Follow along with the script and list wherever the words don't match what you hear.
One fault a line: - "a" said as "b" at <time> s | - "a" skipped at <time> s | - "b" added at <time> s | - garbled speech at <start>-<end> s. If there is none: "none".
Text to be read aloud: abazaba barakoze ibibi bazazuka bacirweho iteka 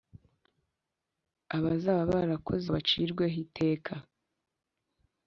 - "ibibi bazazuka" skipped at 2.6 s